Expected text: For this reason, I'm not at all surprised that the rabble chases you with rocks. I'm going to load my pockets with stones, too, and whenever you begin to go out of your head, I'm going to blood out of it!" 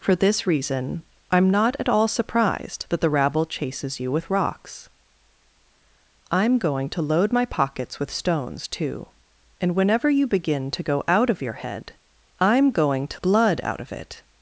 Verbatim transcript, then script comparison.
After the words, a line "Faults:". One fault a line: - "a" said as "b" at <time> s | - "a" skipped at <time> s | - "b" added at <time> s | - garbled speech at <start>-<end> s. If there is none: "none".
For this reason, I'm not at all surprised that the rabble chases you with rocks. I'm going to load my pockets with stones, too, and whenever you begin to go out of your head, I'm going to blood out of it!"
Faults:
none